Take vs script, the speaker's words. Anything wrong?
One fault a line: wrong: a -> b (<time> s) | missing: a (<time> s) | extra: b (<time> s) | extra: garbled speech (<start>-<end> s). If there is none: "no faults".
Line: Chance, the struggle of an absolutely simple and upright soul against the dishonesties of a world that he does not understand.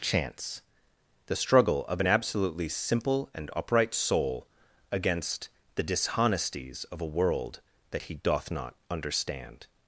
wrong: does -> doth (8.2 s)